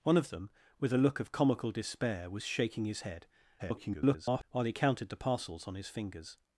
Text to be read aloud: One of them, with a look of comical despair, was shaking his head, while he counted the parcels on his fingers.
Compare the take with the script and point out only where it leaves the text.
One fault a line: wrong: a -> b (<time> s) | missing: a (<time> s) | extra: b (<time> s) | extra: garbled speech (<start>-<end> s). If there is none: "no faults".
extra: garbled speech (3.6-4.4 s)